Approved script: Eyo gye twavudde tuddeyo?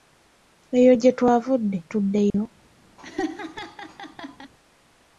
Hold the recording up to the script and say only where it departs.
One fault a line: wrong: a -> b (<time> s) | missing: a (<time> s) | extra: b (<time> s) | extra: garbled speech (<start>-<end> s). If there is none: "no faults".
no faults